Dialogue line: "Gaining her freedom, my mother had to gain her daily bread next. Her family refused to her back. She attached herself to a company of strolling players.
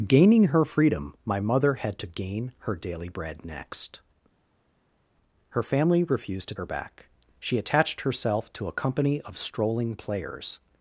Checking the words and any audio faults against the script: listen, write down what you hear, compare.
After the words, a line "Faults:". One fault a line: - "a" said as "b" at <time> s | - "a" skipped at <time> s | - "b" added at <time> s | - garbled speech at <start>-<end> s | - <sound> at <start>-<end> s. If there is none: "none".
"Gaining her freedom, my mother had to gain her daily bread next. Her family refused to her back. She attached herself to a company of strolling players.
Faults:
none